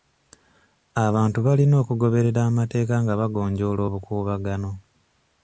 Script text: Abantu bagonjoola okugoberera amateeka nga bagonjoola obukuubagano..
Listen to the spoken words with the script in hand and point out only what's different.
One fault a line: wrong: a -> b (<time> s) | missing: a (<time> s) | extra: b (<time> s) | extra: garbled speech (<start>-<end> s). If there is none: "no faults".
wrong: bagonjoola -> balina (1.4 s)